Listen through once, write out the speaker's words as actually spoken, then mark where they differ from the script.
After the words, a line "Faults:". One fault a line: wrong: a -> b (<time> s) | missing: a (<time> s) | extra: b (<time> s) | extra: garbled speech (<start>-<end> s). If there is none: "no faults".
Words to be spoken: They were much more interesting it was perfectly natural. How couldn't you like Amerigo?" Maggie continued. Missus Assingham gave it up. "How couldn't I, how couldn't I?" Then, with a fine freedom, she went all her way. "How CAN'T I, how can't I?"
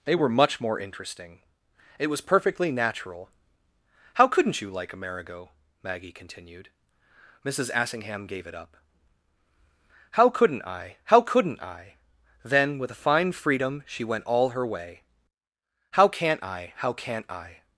They were much more interesting it was perfectly natural. How couldn't you like Amerigo?" Maggie continued. Missus Assingham gave it up. "How couldn't I, how couldn't I?" Then, with a fine freedom, she went all her way. "How CAN'T I, how can't I?"
Faults:
no faults